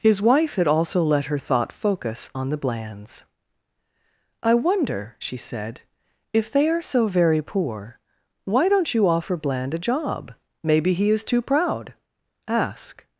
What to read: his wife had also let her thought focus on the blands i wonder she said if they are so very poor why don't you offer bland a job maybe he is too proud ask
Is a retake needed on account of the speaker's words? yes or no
no